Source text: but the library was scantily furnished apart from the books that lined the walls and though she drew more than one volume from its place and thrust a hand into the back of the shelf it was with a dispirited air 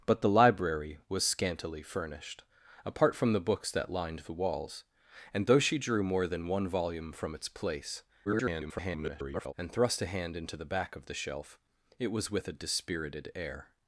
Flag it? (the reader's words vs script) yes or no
yes